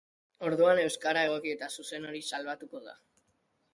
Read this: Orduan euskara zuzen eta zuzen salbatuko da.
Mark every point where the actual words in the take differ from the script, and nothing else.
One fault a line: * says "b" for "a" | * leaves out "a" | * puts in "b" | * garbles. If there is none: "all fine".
* says "egoki" for "zuzen"
* puts in "hori"